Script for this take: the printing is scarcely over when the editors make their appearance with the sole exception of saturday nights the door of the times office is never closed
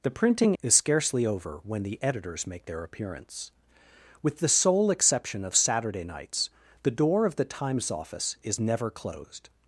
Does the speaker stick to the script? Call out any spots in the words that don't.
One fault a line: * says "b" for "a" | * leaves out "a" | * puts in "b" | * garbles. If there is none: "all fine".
all fine